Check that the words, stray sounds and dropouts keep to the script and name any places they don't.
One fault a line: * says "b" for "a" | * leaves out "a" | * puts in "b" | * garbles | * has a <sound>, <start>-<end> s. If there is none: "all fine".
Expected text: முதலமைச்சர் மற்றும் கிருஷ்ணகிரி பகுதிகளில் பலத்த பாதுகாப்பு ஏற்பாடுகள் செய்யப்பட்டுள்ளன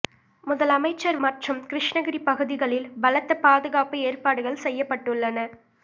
all fine